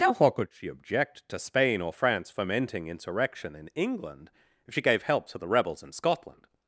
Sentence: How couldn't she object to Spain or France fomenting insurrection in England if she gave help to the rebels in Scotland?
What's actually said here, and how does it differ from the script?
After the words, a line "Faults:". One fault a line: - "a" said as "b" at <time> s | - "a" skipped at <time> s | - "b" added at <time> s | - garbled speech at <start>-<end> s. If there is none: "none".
How could she object to Spain or France fomenting insurrection in England if she gave help to the rebels in Scotland?
Faults:
- "couldn't" said as "could" at 0.3 s